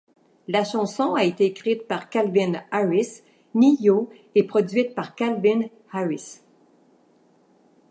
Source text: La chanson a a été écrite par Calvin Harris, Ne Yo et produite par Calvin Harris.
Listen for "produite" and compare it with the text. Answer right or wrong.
right